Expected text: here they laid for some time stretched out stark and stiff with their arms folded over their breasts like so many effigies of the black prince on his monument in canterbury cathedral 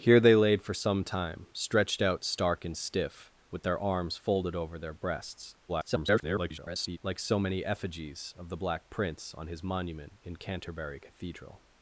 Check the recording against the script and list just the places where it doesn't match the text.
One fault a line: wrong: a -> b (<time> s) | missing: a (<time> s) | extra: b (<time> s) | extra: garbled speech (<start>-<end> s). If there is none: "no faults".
extra: garbled speech (5.7-7.0 s)